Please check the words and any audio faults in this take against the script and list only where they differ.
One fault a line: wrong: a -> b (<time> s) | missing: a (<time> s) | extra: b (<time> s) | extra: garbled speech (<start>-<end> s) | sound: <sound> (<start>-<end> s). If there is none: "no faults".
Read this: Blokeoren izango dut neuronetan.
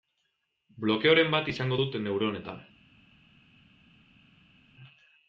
extra: bat (1.4 s)